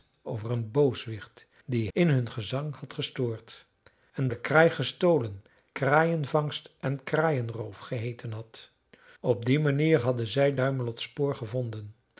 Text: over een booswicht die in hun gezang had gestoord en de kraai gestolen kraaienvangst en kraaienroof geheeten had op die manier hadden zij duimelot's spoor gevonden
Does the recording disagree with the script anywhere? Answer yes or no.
no